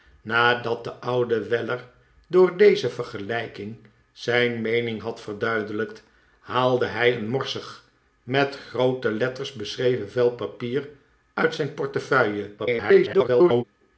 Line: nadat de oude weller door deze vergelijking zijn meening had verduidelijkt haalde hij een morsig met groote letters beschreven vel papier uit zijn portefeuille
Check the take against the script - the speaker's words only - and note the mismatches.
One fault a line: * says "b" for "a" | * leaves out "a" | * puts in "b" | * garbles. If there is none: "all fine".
* garbles